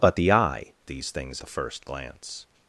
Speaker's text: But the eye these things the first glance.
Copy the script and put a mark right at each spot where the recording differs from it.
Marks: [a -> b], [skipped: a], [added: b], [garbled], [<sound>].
But the eye these things the first glance.